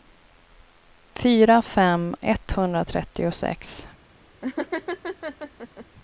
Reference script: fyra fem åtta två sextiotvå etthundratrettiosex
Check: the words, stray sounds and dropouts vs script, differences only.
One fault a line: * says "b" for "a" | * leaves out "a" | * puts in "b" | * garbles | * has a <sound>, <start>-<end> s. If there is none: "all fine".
* leaves out "åtta två sextiotvå"
* has a laugh, 4.4-5.9 s